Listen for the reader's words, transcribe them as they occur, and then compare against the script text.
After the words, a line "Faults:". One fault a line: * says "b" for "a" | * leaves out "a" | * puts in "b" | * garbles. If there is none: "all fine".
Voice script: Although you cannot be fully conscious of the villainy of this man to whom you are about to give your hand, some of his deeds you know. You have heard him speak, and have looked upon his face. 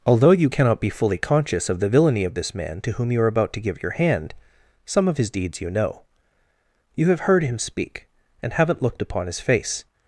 Although you cannot be fully conscious of the villainy of this man to whom you are about to give your hand, some of his deeds you know. You have heard him speak, and haven't looked upon his face.
Faults:
* says "haven't" for "have"